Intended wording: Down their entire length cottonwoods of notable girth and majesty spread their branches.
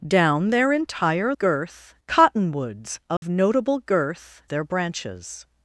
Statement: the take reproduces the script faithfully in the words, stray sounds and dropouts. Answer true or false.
false